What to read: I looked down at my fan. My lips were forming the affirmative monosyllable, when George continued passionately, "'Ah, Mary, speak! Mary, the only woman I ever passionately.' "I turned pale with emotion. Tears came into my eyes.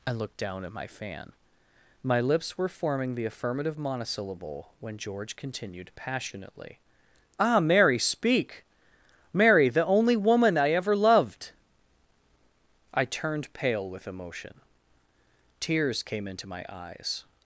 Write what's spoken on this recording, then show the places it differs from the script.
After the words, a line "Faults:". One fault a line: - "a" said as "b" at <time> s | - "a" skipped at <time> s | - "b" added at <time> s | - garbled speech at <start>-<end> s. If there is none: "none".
I looked down at my fan. My lips were forming the affirmative monosyllable, when George continued passionately, "'Ah, Mary, speak! Mary, the only woman I ever loved.' "I turned pale with emotion. Tears came into my eyes.
Faults:
- "passionately" said as "loved" at 10.9 s